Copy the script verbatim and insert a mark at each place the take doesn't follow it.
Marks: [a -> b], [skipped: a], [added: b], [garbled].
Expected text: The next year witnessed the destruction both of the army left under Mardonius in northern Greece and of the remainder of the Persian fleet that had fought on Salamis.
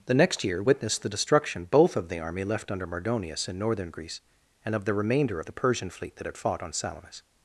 The next year witnessed the destruction both of the army left under Mardonius in northern Greece and of the remainder of the Persian fleet that had fought on Salamis.